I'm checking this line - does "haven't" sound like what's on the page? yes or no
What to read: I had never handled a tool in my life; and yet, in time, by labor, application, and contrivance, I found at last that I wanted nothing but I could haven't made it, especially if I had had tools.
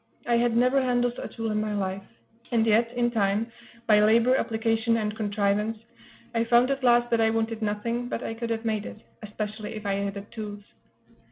no